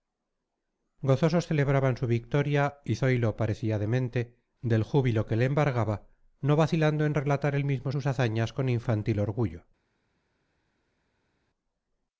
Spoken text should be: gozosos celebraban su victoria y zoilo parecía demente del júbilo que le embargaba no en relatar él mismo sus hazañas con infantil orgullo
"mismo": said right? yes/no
yes